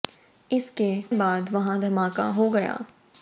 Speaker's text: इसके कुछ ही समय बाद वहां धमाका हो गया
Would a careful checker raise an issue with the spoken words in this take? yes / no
yes